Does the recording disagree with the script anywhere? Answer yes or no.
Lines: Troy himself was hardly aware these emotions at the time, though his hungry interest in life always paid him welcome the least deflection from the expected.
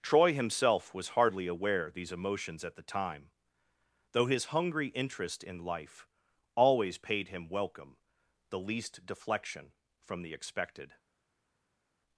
no